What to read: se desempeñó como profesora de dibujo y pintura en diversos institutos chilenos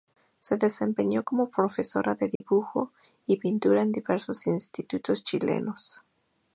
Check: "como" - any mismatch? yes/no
no